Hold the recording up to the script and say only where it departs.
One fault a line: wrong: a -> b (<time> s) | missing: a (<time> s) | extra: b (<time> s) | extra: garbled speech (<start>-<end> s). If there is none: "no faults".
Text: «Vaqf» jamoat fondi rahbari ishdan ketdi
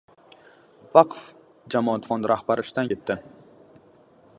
no faults